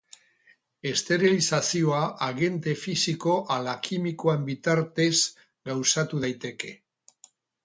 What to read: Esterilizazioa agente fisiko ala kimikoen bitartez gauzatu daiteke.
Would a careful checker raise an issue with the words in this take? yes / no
no